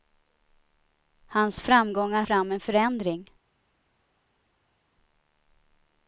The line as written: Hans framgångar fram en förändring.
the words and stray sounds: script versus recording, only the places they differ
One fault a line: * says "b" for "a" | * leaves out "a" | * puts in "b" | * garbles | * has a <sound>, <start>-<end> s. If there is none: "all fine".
all fine